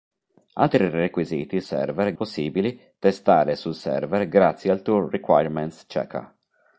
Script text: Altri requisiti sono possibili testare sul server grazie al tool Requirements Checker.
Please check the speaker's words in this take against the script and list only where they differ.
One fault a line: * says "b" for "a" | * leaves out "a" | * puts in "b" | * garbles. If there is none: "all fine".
* says "server" for "sono"